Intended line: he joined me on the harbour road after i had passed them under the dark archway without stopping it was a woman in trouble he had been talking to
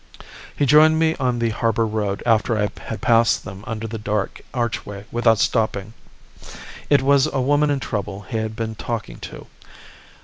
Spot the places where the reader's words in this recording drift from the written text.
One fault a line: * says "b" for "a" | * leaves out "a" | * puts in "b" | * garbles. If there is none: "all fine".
all fine